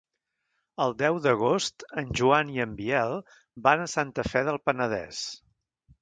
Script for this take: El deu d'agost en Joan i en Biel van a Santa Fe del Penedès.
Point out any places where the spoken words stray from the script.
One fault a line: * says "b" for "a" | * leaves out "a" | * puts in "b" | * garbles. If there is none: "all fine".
all fine